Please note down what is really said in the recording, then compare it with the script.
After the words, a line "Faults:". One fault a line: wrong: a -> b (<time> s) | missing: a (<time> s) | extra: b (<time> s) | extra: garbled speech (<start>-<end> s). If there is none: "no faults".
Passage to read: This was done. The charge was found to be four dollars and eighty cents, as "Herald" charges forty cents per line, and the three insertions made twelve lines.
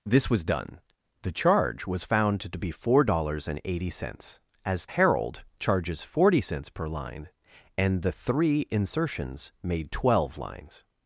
This was done. The charge was found to be four dollars and eighty cents, as "Herald" charges forty cents per line, and the three insertions made twelve lines.
Faults:
no faults